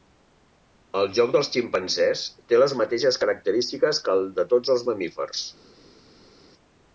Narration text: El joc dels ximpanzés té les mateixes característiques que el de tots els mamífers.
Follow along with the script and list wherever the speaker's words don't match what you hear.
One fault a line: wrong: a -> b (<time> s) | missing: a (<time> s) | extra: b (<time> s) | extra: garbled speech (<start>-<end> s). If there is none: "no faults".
no faults